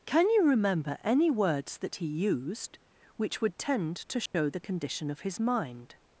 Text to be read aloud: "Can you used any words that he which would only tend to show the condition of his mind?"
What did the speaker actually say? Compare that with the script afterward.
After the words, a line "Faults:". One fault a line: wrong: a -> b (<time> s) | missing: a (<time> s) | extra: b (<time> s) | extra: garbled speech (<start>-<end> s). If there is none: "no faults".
"Can you remember any words that he used which would tend to show the condition of his mind?"
Faults:
wrong: used -> remember (0.5 s)
extra: used (2.1 s)
missing: only (3.6 s)